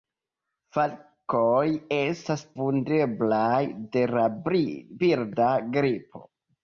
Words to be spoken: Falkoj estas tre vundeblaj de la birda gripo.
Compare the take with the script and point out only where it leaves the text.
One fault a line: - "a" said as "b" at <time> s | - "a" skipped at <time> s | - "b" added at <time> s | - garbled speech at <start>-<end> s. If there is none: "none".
- "tre" skipped at 2.5 s